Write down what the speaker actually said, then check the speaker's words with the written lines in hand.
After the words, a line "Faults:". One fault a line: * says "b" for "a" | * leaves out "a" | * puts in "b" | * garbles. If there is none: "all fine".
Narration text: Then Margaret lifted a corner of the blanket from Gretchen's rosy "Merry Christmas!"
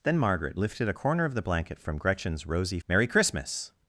Then Margaret lifted a corner of the blanket from Gretchen's rosy "Merry Christmas!"
Faults:
all fine